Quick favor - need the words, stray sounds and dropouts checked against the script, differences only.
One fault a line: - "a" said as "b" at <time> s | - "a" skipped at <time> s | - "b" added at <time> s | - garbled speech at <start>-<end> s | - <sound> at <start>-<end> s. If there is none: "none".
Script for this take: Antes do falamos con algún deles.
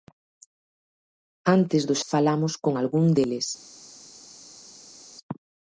none